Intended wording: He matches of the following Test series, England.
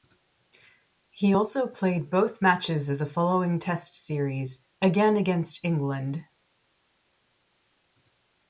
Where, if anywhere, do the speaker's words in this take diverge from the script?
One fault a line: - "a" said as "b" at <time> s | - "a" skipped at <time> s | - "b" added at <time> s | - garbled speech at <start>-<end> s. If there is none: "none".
- "also played both" added at 1.3 s
- "again against" added at 4.8 s